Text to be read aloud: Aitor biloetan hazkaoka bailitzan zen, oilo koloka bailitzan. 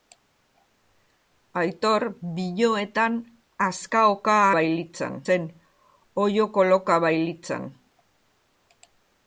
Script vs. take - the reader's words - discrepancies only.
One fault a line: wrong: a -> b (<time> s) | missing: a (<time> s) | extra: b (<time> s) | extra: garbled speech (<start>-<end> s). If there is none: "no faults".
no faults